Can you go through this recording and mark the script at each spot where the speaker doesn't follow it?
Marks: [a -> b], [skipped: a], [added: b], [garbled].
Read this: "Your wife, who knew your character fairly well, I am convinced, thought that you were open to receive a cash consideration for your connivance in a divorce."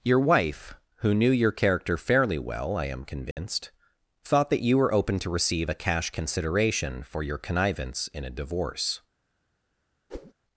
"Your wife, who knew your character fairly well, I am convinced, thought that you were open to receive a cash consideration for your connivance in a divorce."